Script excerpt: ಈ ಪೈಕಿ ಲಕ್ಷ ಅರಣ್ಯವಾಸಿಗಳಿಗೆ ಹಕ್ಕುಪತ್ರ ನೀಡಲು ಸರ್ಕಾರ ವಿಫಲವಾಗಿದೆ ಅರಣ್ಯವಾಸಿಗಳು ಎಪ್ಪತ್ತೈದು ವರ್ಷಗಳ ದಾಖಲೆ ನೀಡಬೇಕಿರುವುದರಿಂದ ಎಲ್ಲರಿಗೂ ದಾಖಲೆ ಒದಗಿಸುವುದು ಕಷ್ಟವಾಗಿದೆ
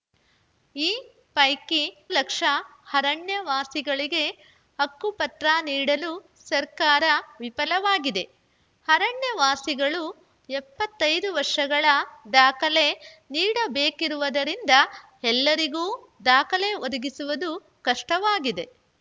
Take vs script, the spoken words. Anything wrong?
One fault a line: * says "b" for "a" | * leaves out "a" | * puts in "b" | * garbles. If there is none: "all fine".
all fine